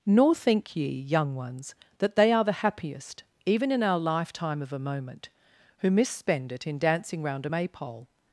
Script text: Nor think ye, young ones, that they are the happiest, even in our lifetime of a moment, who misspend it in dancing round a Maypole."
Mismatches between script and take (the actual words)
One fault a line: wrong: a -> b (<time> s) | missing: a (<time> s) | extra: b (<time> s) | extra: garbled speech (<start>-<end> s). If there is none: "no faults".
no faults